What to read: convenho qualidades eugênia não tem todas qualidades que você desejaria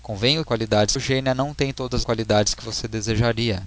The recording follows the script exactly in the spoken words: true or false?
true